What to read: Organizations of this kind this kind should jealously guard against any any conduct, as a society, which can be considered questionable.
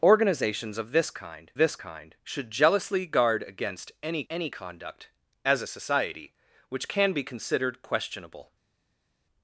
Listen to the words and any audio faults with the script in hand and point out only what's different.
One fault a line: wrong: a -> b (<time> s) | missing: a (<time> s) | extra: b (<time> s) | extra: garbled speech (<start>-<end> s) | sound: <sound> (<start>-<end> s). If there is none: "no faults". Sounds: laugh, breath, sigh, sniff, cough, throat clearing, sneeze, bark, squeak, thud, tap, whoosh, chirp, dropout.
no faults